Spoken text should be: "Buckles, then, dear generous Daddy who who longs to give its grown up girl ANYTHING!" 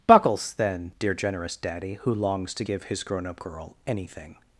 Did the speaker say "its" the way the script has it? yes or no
no